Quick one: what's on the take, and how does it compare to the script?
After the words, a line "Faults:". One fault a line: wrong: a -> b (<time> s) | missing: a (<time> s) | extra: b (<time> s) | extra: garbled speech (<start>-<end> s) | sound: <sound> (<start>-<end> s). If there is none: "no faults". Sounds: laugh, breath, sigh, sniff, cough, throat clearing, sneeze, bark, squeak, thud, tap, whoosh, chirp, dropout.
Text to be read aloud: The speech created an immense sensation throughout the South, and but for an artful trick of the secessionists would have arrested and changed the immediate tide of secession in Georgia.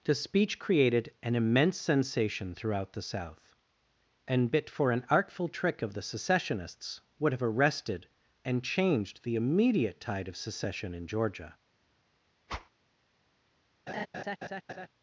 The speech created an immense sensation throughout the South, and bit for an artful trick of the secessionists would have arrested and changed the immediate tide of secession in Georgia.
Faults:
wrong: but -> bit (4.5 s)
sound: whoosh (12.5-12.7 s)
sound: laugh (13.9-14.9 s)